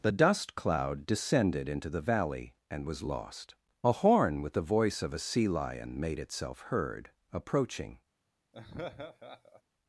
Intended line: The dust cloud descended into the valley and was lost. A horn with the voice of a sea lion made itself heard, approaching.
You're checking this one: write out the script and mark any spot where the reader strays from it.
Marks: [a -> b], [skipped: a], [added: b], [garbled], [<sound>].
The dust cloud descended into the valley and was lost. A horn with the voice of a sea lion made itself heard, approaching. [laugh]